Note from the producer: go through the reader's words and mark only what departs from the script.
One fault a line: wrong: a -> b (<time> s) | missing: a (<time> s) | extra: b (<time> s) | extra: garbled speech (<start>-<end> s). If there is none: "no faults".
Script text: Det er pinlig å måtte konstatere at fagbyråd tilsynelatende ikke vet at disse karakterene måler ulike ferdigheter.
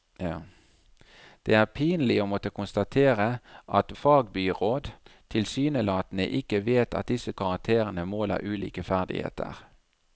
no faults